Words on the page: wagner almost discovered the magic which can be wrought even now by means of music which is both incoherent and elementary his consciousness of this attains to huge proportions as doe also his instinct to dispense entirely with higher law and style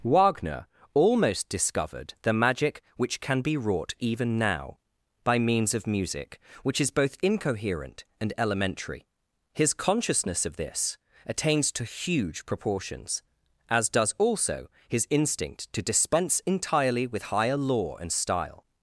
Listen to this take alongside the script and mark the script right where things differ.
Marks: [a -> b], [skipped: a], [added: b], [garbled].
wagner almost discovered the magic which can be wrought even now by means of music which is both incoherent and elementary his consciousness of this attains to huge proportions as [doe -> does] also his instinct to dispense entirely with higher law and style